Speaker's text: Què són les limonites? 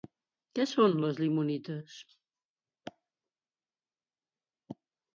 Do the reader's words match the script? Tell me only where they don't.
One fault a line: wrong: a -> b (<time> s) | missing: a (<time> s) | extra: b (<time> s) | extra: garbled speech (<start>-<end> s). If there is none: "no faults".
no faults